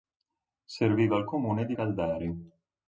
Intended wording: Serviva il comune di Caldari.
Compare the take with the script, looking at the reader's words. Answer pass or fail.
pass